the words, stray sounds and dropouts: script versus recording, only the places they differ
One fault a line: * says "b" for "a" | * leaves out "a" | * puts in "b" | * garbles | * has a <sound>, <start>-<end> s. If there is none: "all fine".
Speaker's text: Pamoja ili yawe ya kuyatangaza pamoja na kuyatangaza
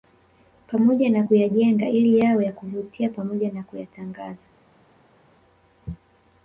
* puts in "na kuyajenga"
* says "kuvutia" for "kuyatangaza"